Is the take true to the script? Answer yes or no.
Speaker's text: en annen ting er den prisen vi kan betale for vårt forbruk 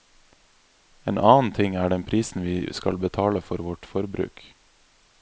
no